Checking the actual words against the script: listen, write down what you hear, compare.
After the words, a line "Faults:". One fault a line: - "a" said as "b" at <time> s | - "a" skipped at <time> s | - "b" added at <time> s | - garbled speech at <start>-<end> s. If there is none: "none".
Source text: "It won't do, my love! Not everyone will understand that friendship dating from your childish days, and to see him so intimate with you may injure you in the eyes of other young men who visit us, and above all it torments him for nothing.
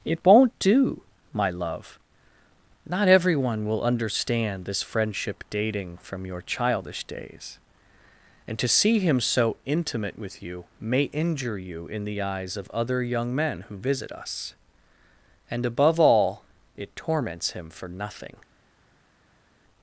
"It won't do, my love! Not everyone will understand this friendship dating from your childish days, and to see him so intimate with you may injure you in the eyes of other young men who visit us, and above all it torments him for nothing.
Faults:
- "that" said as "this" at 4.7 s